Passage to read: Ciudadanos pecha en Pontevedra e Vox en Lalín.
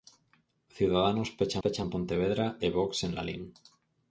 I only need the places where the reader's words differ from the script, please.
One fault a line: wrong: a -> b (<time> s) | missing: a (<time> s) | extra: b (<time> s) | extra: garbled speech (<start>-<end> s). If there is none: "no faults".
extra: pecha (1.6 s)